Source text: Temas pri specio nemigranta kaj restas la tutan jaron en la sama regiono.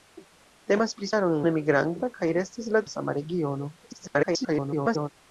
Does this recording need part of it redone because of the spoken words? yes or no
yes